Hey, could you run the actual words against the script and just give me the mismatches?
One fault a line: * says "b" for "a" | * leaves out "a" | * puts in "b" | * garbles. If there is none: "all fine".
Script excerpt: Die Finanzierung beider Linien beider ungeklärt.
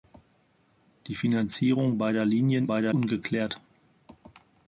all fine